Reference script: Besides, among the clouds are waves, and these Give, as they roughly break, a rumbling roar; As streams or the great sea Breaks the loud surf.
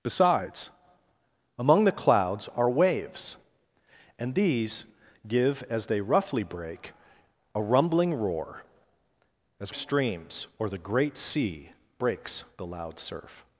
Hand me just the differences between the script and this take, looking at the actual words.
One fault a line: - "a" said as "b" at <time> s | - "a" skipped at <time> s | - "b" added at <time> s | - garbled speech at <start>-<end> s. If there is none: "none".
none